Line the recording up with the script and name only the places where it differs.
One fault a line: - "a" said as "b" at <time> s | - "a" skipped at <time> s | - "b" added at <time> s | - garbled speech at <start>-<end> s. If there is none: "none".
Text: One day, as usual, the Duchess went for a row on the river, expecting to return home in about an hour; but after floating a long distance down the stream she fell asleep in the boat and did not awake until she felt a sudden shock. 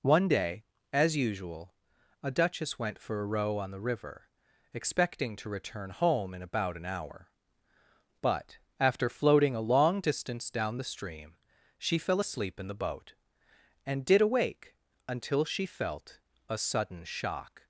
- "the" said as "a" at 2.2 s
- "not" skipped at 14.2 s